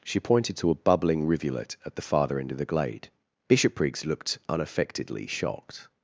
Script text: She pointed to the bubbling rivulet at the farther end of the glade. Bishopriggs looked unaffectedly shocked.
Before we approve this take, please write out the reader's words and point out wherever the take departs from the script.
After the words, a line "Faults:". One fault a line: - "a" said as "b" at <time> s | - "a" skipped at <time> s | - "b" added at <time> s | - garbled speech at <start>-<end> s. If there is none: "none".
She pointed to a bubbling rivulet at the farther end of the glade. Bishopriggs looked unaffectedly shocked.
Faults:
- "the" said as "a" at 0.7 s